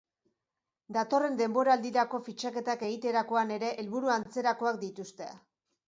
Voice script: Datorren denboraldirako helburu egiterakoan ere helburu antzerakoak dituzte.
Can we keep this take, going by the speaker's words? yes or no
no